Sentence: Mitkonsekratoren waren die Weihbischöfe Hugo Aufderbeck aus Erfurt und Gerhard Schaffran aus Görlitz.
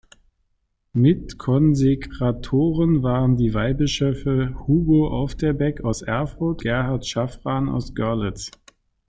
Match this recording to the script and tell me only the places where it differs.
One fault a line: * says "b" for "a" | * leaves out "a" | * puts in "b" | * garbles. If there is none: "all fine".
* leaves out "und"